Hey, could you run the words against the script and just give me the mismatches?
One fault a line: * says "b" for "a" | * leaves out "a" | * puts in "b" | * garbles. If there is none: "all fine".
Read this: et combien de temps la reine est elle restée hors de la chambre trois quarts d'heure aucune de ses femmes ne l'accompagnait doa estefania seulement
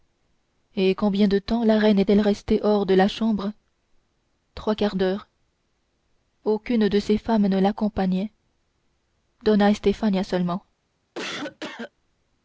all fine